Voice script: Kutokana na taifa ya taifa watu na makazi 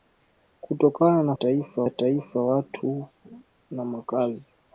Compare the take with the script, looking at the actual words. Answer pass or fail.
pass